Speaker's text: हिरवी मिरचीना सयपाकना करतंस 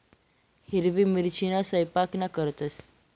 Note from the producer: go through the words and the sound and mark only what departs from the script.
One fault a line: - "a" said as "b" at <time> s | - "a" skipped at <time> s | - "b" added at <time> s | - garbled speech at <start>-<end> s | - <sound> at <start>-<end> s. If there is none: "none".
none